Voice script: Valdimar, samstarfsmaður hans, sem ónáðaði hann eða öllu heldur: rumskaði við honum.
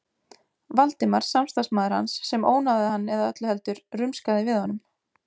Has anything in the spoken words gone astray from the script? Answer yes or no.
no